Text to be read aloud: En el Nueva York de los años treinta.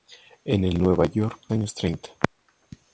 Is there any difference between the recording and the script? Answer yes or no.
yes